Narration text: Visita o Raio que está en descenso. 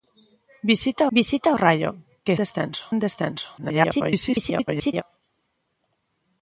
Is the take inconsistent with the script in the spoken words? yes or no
yes